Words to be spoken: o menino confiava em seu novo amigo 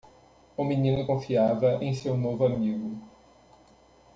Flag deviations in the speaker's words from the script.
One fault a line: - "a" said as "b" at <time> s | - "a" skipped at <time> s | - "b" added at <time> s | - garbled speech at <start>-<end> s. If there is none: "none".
none